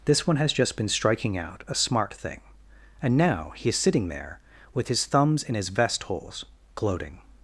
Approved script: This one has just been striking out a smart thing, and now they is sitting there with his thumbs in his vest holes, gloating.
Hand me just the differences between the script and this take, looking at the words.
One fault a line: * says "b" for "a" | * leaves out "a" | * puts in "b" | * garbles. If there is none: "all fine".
* says "he" for "they"